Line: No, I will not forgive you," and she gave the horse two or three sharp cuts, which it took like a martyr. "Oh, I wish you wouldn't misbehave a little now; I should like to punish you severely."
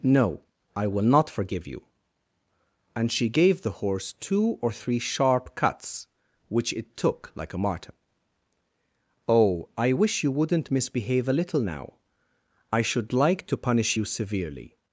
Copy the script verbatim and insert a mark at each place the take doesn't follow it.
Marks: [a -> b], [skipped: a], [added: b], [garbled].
No, I will not forgive you," and she gave the horse two or three sharp cuts, which it took like a martyr. "Oh, I wish you wouldn't misbehave a little now; I should like to punish you severely."